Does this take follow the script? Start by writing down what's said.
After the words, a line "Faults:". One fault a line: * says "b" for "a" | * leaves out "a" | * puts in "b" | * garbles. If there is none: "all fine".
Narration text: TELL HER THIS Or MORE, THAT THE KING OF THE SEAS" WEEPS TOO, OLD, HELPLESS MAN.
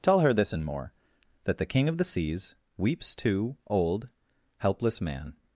TELL HER THIS AND MORE, THAT THE KING OF THE SEAS" WEEPS TOO, OLD, HELPLESS MAN.
Faults:
* says "AND" for "Or"